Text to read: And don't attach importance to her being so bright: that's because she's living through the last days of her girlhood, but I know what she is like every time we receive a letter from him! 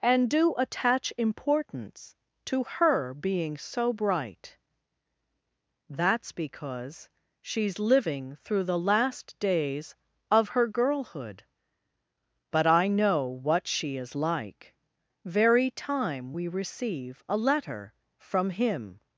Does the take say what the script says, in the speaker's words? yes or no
no